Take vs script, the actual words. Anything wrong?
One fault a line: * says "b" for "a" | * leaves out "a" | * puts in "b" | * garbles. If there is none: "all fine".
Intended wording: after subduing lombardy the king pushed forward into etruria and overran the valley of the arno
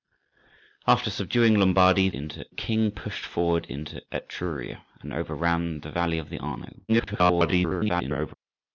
* says "into" for "the"
* garbles